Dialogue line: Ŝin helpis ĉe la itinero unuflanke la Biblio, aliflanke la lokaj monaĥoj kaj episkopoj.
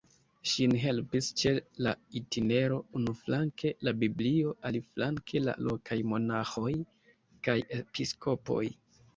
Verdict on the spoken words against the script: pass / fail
pass